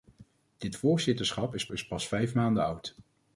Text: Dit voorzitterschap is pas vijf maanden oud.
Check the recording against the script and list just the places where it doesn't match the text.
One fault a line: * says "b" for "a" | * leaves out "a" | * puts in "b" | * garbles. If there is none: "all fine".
* puts in "is"